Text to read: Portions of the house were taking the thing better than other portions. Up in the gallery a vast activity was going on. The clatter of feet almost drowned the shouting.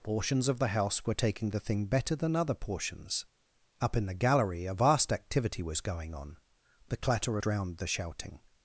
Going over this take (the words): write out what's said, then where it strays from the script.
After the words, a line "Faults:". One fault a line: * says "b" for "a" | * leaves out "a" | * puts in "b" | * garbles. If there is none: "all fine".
Portions of the house were taking the thing better than other portions. Up in the gallery a vast activity was going on. The clatter of drowned the shouting.
Faults:
* leaves out "feet almost"